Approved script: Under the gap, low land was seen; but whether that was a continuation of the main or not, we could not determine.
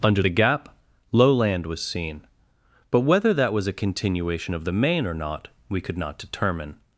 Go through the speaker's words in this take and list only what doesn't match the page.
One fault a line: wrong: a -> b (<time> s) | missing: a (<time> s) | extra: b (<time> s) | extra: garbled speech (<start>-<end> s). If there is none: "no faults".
no faults